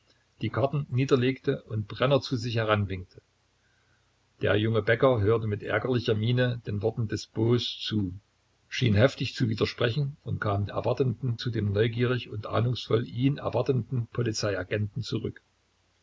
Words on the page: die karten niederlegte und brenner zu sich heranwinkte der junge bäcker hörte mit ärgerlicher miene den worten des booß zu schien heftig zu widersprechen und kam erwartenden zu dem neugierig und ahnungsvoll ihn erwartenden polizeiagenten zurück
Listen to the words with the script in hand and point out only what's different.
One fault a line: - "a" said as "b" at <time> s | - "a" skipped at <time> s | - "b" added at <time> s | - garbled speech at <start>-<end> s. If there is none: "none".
none